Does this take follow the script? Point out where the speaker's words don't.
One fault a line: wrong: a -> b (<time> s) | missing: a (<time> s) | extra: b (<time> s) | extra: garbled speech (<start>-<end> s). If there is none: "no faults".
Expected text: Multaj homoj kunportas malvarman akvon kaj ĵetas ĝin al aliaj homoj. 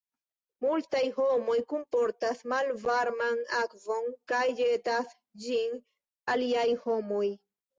missing: al (5.8 s)